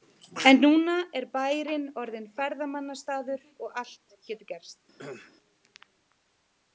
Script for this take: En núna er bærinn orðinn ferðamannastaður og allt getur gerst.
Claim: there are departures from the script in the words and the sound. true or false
true